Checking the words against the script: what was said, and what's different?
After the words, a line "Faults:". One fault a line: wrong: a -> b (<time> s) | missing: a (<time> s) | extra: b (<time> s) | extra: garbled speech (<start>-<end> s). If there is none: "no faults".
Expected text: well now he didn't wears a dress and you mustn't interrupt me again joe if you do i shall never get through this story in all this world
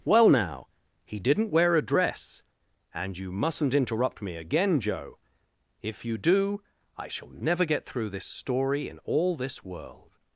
well now he didn't wear a dress and you mustn't interrupt me again joe if you do i shall never get through this story in all this world
Faults:
wrong: wears -> wear (1.5 s)